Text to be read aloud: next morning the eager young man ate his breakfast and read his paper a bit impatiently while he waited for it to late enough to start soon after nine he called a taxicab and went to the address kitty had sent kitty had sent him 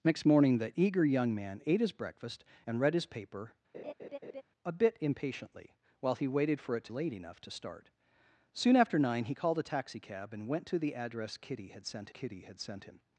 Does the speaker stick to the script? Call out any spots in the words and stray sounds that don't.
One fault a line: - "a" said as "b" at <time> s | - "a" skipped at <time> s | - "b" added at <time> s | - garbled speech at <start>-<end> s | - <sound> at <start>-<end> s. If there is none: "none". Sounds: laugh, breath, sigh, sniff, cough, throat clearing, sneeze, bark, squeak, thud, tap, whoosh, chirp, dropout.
- laugh at 3.7-4.4 s